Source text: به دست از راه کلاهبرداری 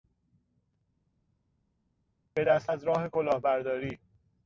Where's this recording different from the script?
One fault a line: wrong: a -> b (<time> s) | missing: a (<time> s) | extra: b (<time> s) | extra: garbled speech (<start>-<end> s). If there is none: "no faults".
no faults